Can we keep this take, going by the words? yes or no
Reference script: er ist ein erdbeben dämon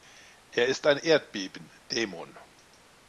yes